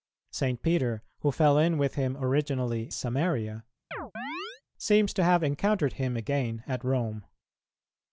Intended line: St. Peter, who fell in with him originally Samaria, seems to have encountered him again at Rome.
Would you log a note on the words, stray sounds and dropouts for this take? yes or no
yes